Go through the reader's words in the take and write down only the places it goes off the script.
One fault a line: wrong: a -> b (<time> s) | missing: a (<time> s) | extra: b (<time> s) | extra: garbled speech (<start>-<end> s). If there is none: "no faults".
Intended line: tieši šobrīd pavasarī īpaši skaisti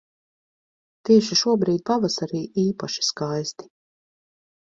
no faults